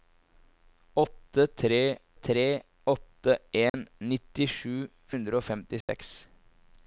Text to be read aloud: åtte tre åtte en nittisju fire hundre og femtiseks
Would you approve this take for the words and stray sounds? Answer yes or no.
no